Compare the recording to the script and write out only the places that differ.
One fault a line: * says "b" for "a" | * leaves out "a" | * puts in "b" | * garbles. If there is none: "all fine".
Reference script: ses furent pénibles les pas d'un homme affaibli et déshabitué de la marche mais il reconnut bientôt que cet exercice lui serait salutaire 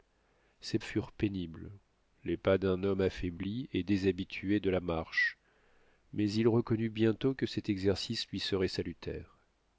all fine